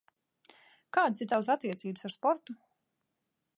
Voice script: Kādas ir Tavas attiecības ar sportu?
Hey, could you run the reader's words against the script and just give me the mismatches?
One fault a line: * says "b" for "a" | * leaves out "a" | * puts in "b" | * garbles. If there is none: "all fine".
all fine